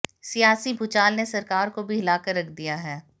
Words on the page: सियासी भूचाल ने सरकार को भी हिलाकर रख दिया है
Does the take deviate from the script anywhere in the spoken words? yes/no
no